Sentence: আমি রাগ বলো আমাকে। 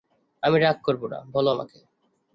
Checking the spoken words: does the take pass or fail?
fail